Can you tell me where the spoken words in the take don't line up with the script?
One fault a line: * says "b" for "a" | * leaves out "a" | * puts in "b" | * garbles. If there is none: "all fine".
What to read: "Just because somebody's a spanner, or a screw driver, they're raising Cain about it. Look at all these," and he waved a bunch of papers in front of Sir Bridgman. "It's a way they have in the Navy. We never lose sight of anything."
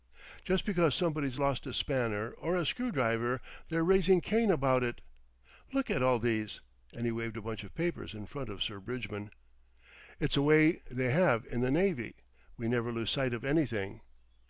* puts in "lost"